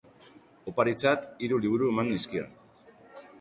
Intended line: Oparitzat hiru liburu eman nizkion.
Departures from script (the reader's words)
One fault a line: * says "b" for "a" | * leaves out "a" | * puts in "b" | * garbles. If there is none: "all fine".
all fine